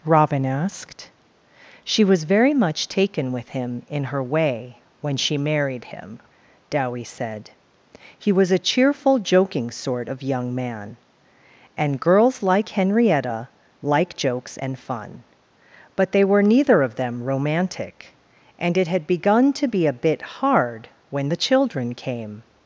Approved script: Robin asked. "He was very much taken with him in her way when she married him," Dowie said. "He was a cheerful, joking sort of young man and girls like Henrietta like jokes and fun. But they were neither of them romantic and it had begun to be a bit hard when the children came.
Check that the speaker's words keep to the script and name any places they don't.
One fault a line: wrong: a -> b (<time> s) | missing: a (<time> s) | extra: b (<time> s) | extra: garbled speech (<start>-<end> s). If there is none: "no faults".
wrong: He -> She (1.8 s)